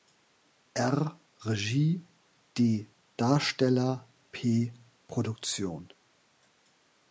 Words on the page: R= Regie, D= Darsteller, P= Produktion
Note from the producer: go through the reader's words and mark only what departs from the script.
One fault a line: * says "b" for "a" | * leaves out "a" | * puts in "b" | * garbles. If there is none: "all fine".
all fine